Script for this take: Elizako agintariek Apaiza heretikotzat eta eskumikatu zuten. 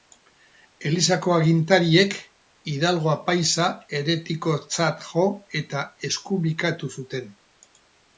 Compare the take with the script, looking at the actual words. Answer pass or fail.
fail